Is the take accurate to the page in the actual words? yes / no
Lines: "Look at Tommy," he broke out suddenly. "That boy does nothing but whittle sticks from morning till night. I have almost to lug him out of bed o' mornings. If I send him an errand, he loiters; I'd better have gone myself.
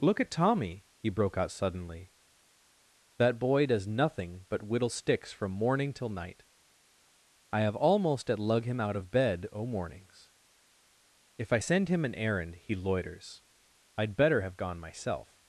no